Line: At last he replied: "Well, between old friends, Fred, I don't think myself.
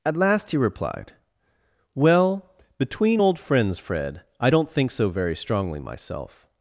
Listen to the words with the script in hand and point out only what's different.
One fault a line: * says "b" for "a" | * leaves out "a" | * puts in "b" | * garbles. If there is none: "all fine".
* puts in "so very strongly"